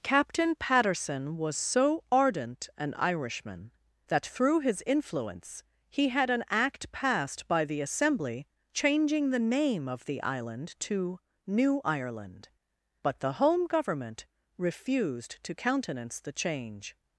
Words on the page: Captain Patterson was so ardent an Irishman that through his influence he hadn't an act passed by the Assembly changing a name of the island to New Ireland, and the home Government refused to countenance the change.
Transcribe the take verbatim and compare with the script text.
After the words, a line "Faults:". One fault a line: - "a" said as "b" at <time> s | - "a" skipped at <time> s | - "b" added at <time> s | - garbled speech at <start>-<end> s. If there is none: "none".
Captain Patterson was so ardent an Irishman that through his influence he had an act passed by the Assembly changing the name of the island to New Ireland, but the home Government refused to countenance the change.
Faults:
- "hadn't" said as "had" at 6.1 s
- "a" said as "the" at 9.3 s
- "and" said as "but" at 13.0 s